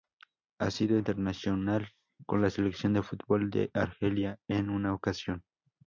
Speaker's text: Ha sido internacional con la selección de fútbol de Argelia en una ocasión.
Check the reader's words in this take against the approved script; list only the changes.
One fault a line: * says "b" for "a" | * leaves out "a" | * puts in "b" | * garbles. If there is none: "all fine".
all fine